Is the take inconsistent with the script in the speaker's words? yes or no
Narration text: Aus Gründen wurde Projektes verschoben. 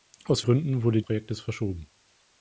no